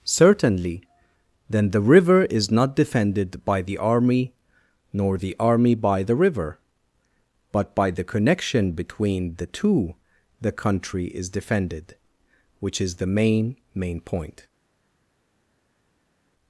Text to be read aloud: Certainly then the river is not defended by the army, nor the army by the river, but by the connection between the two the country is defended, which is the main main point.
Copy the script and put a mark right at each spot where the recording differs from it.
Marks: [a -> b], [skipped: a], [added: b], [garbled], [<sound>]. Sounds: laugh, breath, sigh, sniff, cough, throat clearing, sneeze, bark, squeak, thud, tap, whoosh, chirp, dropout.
Certainly then the river is not defended by the army, nor the army by the river, but by the connection between the two the country is defended, which is the main main point.